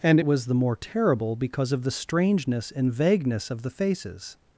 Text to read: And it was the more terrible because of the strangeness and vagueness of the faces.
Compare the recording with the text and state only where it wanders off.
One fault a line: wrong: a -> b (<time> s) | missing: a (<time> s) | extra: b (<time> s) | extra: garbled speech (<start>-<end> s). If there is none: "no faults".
no faults